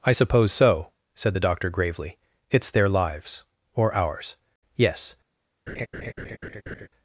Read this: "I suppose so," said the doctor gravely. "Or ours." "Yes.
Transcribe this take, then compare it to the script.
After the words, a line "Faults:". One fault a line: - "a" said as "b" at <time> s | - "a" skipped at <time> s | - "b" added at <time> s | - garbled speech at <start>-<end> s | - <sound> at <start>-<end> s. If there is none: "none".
"I suppose so," said the doctor gravely. "It's their lives or ours." "Yes.
Faults:
- "It's their lives" added at 2.5 s
- laugh at 5.7-6.9 s